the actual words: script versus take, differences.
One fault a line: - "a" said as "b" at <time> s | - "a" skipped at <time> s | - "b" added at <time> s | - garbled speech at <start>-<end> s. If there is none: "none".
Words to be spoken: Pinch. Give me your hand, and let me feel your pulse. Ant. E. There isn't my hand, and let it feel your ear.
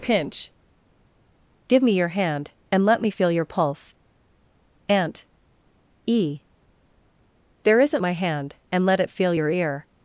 none